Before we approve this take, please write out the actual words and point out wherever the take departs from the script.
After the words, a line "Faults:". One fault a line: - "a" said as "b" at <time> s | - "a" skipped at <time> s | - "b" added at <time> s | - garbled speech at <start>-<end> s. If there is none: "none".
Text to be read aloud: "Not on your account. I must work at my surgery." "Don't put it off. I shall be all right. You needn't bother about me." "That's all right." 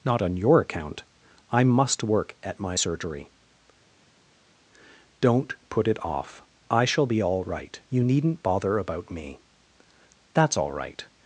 "Not on your account. I must work at my surgery." "Don't put it off. I shall be all right. You needn't bother about me." "That's all right."
Faults:
none